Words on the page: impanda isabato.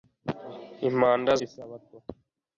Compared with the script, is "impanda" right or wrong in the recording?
right